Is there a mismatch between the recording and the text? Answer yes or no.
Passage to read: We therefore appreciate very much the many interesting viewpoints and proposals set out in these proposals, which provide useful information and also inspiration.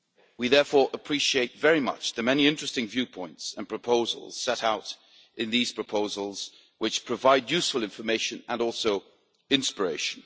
no